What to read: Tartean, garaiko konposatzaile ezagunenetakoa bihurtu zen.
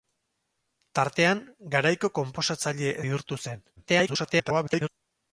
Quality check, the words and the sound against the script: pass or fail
fail